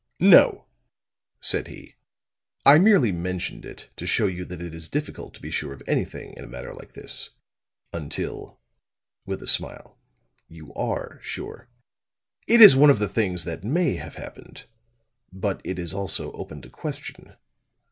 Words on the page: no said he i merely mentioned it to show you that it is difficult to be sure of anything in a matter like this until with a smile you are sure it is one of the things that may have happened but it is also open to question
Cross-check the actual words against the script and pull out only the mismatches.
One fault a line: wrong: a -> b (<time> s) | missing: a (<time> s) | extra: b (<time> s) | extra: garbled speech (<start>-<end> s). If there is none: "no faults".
no faults